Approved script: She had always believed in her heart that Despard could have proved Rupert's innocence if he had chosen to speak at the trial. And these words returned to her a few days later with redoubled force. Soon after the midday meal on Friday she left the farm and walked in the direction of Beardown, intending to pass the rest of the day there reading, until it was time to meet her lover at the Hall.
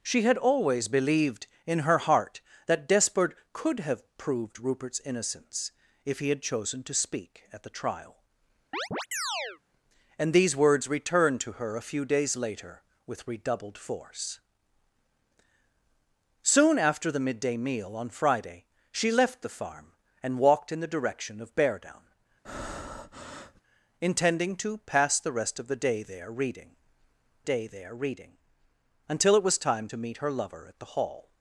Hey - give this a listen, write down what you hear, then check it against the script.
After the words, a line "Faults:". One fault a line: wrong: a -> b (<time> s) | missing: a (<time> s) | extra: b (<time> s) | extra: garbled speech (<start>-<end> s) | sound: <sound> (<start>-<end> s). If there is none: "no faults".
She had always believed in her heart that Despard could have proved Rupert's innocence if he had chosen to speak at the trial. And these words returned to her a few days later with redoubled force. Soon after the midday meal on Friday she left the farm and walked in the direction of Beardown, intending to pass the rest of the day there reading day there reading, until it was time to meet her lover at the Hall.
Faults:
sound: chirp (8.7-9.6 s)
sound: breath (22.4-23.6 s)
extra: day there reading (27.4 s)